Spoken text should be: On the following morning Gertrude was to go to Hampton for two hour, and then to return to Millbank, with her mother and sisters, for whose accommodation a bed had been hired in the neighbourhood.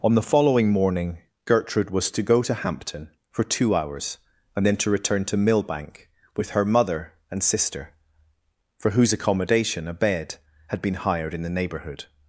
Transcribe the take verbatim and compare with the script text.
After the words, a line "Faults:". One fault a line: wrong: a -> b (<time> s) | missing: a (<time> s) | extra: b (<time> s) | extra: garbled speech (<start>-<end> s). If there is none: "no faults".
On the following morning Gertrude was to go to Hampton for two hours, and then to return to Millbank, with her mother and sister, for whose accommodation a bed had been hired in the neighbourhood.
Faults:
wrong: hour -> hours (3.7 s)
wrong: sisters -> sister (7.4 s)